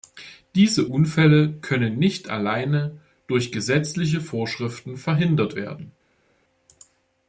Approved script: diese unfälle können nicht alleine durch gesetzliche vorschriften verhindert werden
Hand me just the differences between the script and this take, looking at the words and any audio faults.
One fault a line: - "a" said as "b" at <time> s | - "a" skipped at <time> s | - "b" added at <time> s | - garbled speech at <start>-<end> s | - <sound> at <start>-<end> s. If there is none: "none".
none